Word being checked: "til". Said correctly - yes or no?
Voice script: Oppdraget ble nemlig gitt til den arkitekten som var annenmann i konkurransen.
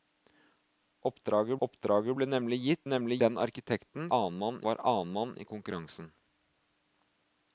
no